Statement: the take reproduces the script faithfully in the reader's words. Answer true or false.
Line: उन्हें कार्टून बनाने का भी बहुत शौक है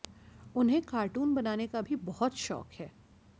true